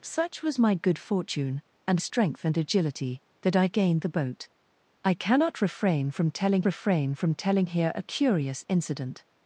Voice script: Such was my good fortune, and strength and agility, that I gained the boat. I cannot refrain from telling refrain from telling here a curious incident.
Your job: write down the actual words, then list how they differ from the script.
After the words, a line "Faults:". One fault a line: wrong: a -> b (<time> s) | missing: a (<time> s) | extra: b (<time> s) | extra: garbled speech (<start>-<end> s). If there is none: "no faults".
Such was my good fortune, and strength and agility, that I gained the boat. I cannot refrain from telling refrain from telling here a curious incident.
Faults:
no faults